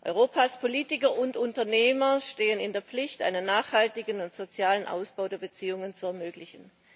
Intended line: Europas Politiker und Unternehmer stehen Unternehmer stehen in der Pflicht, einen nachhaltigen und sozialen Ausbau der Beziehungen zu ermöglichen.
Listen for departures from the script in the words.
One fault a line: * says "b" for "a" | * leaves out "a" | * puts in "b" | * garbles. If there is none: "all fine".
* leaves out "Unternehmer stehen"